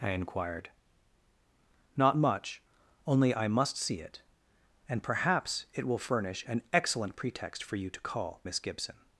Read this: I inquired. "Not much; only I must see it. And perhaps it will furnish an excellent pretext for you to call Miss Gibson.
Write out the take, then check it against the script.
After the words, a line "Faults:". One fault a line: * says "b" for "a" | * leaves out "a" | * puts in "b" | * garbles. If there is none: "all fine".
I inquired. "Not much; only I must see it. And perhaps it will furnish an excellent pretext for you to call Miss Gibson.
Faults:
all fine